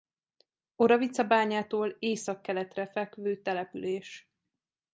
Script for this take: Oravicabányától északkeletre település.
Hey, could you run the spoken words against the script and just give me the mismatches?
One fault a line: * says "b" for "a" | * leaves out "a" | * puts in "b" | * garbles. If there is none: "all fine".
* puts in "fekvő"